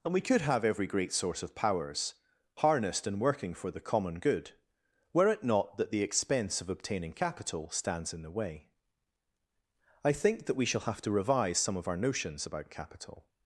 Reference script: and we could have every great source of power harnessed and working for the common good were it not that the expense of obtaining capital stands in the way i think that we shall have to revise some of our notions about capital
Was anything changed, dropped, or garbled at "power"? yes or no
yes